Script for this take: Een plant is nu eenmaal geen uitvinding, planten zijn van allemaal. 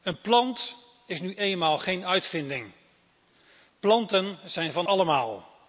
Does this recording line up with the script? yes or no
yes